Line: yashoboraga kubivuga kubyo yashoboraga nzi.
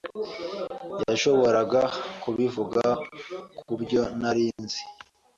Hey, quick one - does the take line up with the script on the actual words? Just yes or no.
no